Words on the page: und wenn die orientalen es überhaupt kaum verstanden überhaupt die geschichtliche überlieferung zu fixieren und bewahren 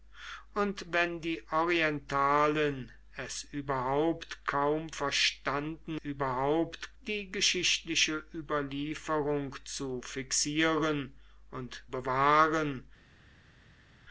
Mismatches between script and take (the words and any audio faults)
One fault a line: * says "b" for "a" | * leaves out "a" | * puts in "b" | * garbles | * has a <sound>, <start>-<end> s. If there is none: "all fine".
all fine